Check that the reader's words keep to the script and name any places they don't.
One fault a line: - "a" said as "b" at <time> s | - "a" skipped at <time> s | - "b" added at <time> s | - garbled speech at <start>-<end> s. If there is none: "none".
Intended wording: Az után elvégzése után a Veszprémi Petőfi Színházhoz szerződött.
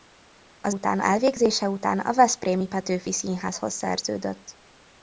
none